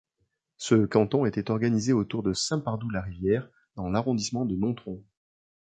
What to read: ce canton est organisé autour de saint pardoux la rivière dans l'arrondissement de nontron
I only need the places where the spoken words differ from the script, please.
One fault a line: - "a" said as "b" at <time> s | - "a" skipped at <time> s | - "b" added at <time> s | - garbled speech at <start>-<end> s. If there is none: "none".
- "est" said as "était" at 1.2 s